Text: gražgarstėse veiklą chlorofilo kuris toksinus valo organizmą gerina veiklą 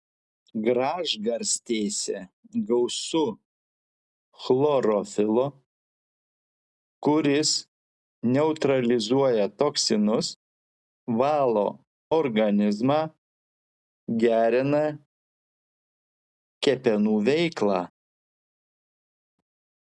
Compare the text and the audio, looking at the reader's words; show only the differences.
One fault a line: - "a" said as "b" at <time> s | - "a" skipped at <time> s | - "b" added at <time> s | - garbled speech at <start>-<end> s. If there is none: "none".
- "veiklą" said as "gausu" at 2.7 s
- "neutralizuoja" added at 8.3 s
- "kepenų" added at 16.7 s